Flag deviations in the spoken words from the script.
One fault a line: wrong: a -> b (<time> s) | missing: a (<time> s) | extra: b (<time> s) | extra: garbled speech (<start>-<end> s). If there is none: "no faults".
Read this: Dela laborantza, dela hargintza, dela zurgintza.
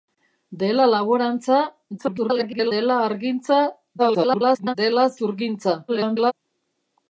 extra: garbled speech (2.0-2.7 s)
extra: garbled speech (4.0-4.8 s)
extra: garbled speech (5.9-6.3 s)